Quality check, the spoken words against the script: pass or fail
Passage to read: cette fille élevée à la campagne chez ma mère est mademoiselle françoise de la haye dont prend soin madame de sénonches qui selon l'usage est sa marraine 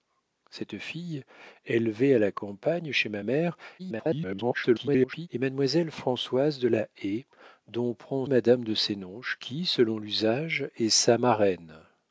fail